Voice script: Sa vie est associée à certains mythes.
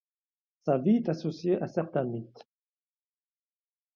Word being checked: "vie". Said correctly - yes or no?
yes